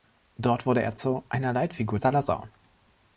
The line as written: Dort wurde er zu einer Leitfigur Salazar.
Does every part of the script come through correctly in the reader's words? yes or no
yes